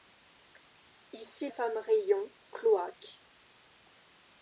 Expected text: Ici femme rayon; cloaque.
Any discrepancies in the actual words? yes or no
no